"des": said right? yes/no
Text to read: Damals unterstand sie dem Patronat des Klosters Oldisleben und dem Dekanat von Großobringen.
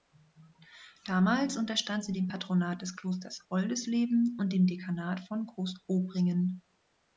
yes